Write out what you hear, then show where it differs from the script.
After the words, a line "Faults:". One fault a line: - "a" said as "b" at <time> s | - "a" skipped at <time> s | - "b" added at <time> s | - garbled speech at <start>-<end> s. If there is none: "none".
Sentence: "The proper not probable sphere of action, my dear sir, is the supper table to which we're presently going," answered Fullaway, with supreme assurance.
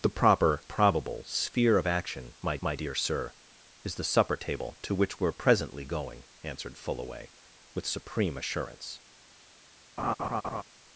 "The proper probable sphere of action, my my dear sir, is the supper table to which we're presently going," answered Fullaway, with supreme assurance.
Faults:
- "not" skipped at 0.6 s
- "my" added at 2.6 s